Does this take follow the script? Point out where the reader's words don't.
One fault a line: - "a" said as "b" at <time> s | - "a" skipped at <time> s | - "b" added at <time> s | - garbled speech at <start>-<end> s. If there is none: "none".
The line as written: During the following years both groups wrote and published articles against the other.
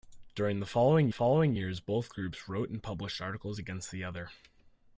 - "following" added at 1.1 s